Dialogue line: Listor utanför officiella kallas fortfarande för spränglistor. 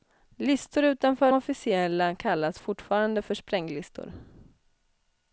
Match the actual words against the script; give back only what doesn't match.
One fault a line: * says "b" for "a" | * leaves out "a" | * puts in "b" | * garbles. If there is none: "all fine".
all fine